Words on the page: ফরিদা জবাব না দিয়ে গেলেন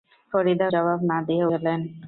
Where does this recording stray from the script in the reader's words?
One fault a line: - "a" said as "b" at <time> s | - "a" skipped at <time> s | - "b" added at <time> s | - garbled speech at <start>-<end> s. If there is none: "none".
none